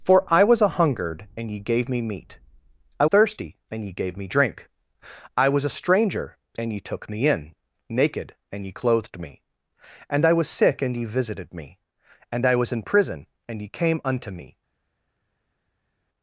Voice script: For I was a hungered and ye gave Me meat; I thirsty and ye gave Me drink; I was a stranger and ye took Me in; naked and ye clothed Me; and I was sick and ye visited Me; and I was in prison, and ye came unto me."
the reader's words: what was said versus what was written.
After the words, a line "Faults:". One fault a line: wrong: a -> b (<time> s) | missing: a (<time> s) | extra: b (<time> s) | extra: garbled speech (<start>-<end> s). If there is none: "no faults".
For I was a hungered and ye gave Me meat; I thirsty and ye gave Me drink; I was a stranger and ye took Me in; naked and ye clothed Me; and I was sick and ye visited Me; and I was in prison, and ye came unto me."
Faults:
no faults